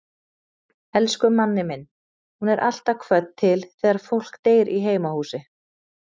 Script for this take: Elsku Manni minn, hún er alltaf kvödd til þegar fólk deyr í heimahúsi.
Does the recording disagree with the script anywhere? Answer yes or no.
no